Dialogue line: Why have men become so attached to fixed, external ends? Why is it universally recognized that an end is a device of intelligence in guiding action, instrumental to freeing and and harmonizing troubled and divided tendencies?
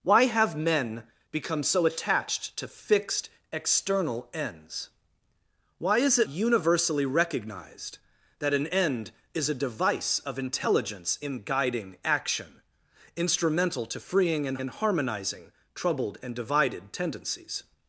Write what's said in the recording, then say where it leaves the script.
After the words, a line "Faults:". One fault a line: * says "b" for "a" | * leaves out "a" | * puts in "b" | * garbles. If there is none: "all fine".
Why have men become so attached to fixed, external ends? Why is it universally recognized that an end is a device of intelligence in guiding action, instrumental to freeing and and harmonizing troubled and divided tendencies?
Faults:
all fine